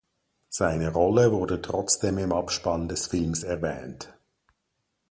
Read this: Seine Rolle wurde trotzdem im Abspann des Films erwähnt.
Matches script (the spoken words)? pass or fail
pass